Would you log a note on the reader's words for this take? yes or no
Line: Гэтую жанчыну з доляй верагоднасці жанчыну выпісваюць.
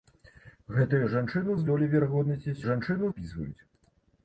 no